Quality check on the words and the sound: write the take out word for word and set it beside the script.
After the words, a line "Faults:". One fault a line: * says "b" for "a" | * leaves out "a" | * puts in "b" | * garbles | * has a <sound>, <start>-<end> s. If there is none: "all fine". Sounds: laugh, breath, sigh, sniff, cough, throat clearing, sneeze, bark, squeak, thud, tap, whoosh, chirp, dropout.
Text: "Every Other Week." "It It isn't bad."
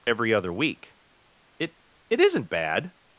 "Every Other Week." "It It isn't bad."
Faults:
all fine